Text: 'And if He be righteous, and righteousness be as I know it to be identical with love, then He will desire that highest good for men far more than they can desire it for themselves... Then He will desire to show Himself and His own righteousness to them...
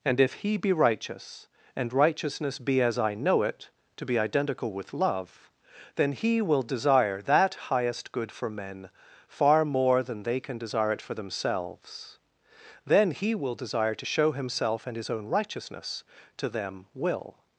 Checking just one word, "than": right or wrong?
right